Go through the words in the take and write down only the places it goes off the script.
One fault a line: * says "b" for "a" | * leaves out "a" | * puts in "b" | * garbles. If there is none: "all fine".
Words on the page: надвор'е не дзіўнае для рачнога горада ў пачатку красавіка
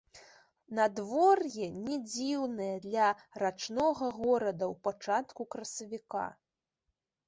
all fine